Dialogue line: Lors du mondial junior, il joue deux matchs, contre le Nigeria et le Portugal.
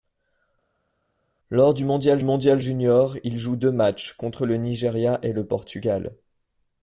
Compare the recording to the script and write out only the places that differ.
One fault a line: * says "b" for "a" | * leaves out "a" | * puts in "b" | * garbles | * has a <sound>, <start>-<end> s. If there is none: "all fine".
* puts in "mondial"